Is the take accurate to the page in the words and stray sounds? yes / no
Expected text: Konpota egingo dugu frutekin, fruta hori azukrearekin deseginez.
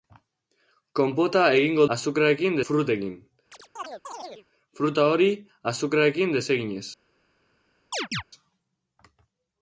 no